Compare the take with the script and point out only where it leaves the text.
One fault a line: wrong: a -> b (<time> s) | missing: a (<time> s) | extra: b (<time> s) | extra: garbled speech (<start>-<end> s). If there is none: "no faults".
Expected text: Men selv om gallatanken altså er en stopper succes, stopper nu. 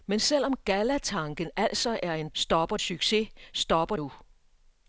no faults